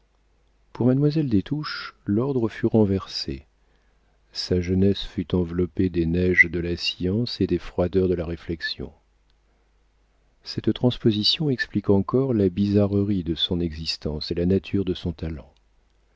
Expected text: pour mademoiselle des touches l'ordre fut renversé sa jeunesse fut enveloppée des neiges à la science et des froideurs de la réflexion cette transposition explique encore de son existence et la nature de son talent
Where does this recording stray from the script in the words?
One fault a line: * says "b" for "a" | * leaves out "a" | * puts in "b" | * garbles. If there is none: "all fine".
* says "de" for "à"
* puts in "la bizarrerie"